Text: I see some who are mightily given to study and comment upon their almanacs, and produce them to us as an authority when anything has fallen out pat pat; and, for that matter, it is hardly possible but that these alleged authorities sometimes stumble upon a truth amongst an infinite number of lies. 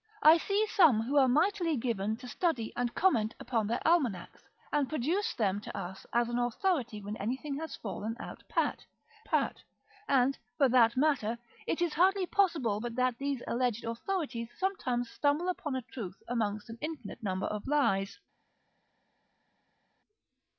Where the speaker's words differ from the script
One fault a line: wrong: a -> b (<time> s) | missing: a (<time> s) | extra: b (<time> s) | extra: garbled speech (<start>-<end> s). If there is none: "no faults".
no faults